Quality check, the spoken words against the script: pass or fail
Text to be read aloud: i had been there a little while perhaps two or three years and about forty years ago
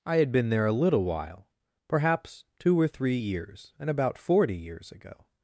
pass